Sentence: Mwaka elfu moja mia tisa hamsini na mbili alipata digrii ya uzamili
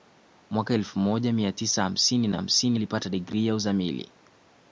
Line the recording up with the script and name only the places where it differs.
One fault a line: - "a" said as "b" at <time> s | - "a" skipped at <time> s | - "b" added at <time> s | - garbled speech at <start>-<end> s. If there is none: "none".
- "mbili" said as "hamsini" at 2.3 s